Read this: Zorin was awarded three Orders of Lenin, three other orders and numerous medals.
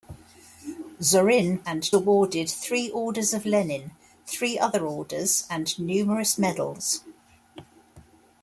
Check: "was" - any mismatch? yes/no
yes